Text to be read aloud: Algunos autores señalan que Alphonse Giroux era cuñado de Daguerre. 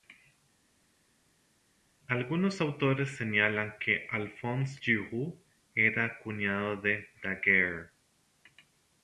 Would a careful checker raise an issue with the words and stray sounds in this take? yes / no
no